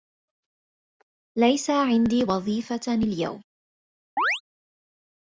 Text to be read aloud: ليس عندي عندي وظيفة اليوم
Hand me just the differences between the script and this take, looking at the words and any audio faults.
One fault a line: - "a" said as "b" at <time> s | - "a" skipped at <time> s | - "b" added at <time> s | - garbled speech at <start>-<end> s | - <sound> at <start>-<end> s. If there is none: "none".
- "عندي" skipped at 2.2 s
- chirp at 4.2-4.4 s